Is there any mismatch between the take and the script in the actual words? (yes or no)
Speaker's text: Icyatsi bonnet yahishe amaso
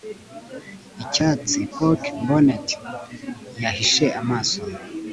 yes